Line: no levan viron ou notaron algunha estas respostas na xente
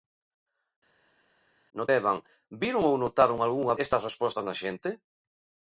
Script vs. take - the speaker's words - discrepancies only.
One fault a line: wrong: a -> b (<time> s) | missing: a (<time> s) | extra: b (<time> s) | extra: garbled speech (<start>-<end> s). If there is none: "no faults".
no faults